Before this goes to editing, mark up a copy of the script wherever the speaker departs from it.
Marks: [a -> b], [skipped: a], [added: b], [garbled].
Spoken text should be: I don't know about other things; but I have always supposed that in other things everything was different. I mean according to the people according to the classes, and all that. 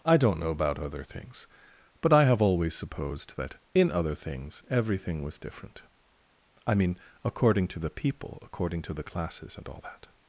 I don't know about other things; but I have always supposed that in other things everything was different. I mean according to the people according to the classes, and all that.